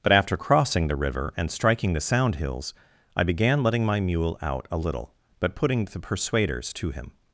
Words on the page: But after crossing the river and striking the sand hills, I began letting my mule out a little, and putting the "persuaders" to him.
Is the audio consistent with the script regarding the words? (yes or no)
no